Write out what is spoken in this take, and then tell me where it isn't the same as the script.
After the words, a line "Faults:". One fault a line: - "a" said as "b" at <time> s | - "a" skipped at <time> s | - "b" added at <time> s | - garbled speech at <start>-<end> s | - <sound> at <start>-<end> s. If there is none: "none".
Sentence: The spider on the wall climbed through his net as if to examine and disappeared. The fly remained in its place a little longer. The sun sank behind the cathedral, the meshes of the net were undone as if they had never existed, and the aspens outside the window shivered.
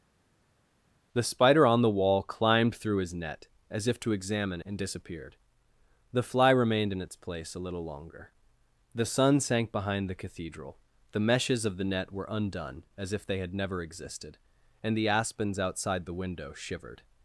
The spider on the wall climbed through his net as if to examine and disappeared. The fly remained in its place a little longer. The sun sank behind the cathedral, the meshes of the net were undone as if they had never existed, and the aspens outside the window shivered.
Faults:
none